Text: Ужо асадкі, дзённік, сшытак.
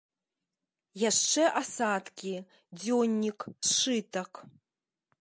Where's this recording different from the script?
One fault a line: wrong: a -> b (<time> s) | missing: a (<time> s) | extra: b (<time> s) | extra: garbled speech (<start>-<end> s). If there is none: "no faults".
wrong: Ужо -> Яшчэ (1.1 s)